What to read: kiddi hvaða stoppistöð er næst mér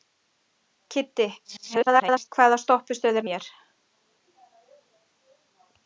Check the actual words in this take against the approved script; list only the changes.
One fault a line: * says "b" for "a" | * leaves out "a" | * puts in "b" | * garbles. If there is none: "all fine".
* garbles
* leaves out "næst"